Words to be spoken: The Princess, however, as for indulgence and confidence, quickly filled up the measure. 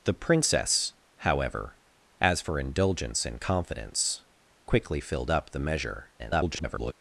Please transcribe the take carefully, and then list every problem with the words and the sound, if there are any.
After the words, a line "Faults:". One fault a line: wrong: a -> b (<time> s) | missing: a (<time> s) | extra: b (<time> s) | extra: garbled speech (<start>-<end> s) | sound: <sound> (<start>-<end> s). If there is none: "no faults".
The Princess, however, as for indulgence and confidence, quickly filled up the measure. [garbled]
Faults:
extra: garbled speech (6.2-6.9 s)